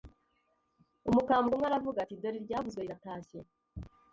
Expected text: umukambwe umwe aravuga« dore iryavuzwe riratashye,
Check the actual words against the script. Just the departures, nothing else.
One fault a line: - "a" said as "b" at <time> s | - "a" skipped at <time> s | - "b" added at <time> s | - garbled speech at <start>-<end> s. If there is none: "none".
- "ati" added at 2.0 s